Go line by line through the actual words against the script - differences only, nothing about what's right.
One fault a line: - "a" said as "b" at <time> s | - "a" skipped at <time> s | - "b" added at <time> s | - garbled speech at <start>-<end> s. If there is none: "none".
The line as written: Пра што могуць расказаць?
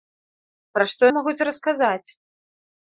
none